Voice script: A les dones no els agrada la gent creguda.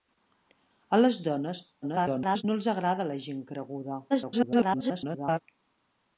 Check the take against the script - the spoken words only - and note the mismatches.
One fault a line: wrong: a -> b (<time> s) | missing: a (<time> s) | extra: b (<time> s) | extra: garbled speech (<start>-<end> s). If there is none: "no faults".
extra: garbled speech (1.8-2.4 s)
extra: garbled speech (4.1-5.4 s)